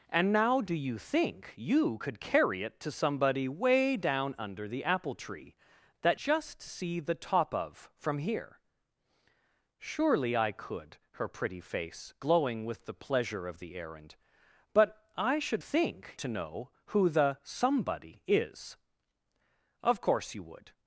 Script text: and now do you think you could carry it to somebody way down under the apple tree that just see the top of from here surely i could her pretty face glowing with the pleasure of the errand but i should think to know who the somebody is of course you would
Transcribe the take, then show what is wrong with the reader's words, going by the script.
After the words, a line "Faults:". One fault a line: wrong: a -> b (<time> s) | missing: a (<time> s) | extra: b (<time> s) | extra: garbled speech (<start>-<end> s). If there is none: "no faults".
and now do you think you could carry it to somebody way down under the apple tree that just see the top of from here surely i could her pretty face glowing with the pleasure of the errand but i should think to know who the somebody is of course you would
Faults:
no faults